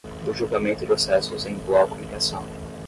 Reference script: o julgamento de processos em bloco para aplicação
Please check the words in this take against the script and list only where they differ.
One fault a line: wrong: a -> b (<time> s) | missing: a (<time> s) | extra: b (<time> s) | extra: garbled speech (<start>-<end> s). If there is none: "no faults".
missing: de (0.8 s)
missing: para (2.0 s)